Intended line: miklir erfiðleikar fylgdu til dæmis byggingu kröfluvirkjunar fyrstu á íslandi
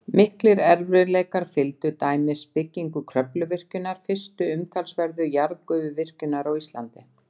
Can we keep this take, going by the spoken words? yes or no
no